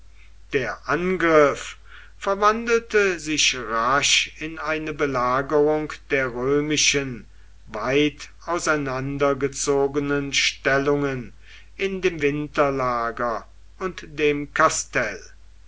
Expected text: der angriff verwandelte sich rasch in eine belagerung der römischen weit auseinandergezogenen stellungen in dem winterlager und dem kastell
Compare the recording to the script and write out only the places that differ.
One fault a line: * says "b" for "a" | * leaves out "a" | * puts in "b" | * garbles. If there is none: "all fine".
all fine